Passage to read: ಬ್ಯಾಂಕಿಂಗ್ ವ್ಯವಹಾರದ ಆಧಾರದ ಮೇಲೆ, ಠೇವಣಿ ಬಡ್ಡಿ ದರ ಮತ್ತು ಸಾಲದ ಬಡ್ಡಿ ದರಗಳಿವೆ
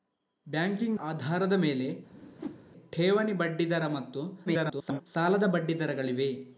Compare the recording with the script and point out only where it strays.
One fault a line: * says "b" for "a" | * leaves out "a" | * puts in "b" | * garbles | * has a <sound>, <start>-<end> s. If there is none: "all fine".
* leaves out "ವ್ಯವಹಾರದ"
* has a whoosh, 2.1-2.6 s
* garbles